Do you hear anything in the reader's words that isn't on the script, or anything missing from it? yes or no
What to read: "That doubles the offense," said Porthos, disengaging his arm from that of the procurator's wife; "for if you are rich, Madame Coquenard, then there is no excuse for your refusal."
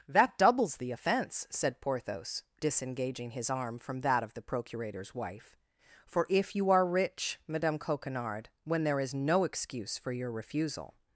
yes